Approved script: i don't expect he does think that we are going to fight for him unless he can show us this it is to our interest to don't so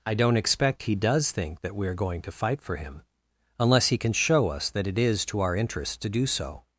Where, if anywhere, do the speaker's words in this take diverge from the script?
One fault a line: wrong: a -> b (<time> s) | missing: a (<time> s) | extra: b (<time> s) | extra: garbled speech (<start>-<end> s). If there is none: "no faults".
wrong: this -> that (4.7 s)
wrong: don't -> do (6.1 s)